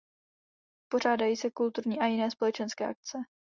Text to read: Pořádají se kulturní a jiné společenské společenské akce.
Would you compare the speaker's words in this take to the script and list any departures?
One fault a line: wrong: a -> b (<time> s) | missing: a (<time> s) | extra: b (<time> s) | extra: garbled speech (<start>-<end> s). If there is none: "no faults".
missing: společenské (2.9 s)